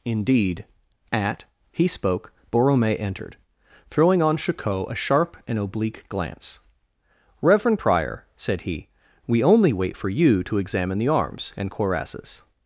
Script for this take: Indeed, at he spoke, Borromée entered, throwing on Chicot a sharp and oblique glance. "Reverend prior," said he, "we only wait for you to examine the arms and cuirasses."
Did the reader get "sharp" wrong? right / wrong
right